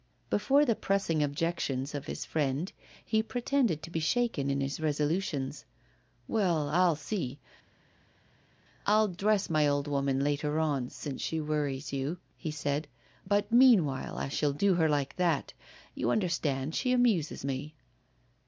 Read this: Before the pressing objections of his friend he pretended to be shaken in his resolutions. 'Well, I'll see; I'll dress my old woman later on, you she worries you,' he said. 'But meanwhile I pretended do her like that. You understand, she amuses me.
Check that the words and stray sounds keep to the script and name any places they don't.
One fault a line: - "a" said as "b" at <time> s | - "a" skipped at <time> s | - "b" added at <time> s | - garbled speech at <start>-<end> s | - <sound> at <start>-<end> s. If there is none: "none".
- "you" said as "since" at 10.9 s
- "pretended" said as "shall" at 14.3 s